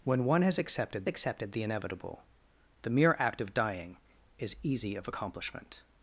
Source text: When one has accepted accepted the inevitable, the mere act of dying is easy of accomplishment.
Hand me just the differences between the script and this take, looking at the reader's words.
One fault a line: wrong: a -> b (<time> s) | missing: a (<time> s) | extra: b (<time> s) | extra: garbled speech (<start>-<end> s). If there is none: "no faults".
no faults